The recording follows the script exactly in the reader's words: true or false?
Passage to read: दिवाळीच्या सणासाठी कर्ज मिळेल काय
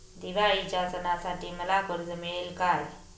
false